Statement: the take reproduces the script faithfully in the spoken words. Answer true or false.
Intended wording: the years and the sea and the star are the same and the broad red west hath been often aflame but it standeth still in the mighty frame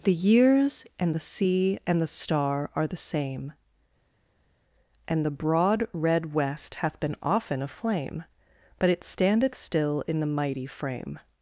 true